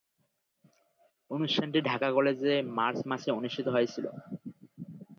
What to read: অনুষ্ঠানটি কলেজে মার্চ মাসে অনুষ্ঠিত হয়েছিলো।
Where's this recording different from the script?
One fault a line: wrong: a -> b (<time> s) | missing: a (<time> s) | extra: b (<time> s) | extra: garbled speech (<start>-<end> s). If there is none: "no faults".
extra: ঢাকা (1.9 s)